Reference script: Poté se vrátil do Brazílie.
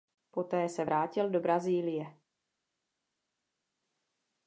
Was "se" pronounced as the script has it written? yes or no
yes